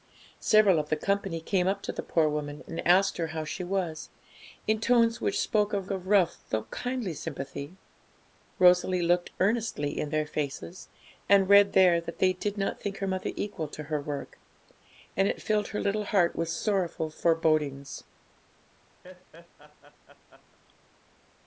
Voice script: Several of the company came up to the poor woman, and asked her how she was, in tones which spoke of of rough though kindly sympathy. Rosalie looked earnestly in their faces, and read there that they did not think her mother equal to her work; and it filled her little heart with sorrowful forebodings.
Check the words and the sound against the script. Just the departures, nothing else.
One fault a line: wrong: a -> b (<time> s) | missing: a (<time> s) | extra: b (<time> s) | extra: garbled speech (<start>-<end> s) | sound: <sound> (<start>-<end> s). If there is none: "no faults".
sound: laugh (19.0-20.6 s)